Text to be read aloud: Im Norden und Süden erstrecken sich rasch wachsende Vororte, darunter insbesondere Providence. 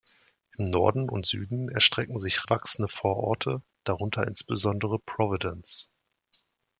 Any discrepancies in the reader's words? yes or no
yes